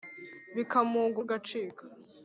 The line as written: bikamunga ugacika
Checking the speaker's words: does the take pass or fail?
pass